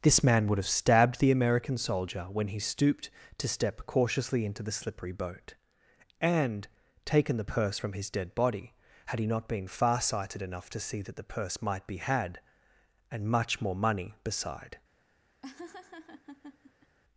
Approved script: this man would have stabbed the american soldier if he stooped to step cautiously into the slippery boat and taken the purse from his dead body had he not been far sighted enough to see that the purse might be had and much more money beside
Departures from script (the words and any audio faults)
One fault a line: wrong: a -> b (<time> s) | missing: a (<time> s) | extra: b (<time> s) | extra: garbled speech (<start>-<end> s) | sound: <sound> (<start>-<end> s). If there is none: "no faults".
wrong: if -> when (2.2 s)
sound: laugh (15.4-17.0 s)